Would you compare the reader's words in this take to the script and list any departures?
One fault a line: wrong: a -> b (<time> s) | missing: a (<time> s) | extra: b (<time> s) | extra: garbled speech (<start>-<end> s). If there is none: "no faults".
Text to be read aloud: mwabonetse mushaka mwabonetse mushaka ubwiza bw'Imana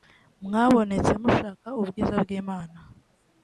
missing: mwabonetse mushaka (1.7 s)